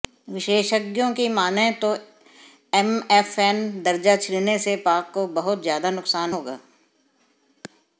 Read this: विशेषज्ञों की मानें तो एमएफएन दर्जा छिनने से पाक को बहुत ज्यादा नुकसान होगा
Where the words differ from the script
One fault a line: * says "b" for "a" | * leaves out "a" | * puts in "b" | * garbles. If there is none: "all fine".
all fine